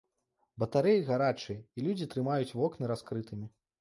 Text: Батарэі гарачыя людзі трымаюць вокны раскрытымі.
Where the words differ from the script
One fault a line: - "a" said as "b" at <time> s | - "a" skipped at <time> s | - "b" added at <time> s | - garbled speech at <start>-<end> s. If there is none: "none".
- "і" added at 1.6 s